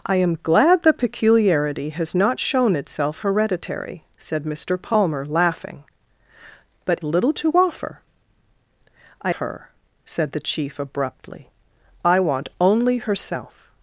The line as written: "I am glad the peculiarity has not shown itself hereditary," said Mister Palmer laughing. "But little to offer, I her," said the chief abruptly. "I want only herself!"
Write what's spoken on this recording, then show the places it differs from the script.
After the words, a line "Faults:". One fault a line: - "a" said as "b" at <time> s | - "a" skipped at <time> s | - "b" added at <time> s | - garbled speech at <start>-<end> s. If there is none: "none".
"I am glad the peculiarity has not shown itself hereditary," said Mister Palmer laughing. "But little to offer, I her," said the chief abruptly. "I want only herself!"
Faults:
none